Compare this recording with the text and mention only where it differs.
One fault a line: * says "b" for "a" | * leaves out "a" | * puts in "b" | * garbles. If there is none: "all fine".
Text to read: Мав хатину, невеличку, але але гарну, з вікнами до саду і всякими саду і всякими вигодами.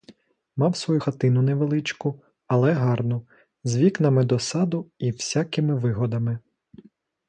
* puts in "свою"
* leaves out "але"
* leaves out "саду і всякими"